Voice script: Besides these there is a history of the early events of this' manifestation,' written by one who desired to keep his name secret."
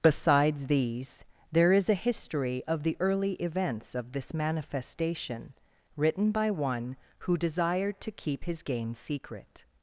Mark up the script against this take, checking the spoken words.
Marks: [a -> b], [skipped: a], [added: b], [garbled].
Besides these there is a history of the early events of this' manifestation,' written by one who desired to keep his [name -> game] secret."